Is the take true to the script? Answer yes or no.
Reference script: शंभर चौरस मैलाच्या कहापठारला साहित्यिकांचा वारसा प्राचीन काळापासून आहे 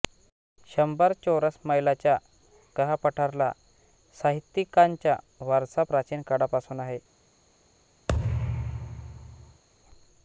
yes